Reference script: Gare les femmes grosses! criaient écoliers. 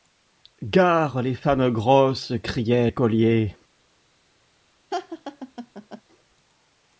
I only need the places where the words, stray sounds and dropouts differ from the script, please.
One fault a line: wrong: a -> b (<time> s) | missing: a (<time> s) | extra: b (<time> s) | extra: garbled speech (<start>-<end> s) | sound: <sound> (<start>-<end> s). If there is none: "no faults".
sound: laugh (4.9-6.0 s)